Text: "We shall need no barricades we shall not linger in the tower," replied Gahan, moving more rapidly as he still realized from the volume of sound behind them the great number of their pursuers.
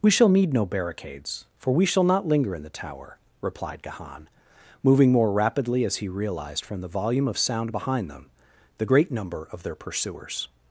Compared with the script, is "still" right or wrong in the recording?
wrong